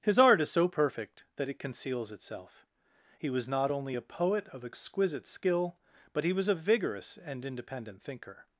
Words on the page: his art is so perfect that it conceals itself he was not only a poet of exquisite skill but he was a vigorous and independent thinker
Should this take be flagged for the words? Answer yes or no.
no